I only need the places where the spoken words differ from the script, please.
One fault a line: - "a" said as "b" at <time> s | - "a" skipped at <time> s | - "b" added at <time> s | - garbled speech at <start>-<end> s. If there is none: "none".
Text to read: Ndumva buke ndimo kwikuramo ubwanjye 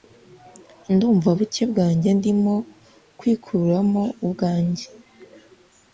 - "bwanjye" added at 1.7 s